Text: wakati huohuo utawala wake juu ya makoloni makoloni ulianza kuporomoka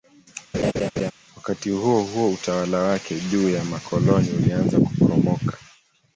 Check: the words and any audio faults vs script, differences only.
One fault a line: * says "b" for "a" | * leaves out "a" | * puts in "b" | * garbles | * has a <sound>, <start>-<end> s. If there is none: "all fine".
* has a laugh, 0.5-1.1 s
* leaves out "makoloni"